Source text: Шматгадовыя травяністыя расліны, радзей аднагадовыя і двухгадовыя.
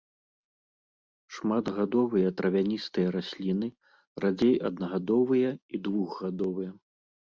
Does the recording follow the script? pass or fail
pass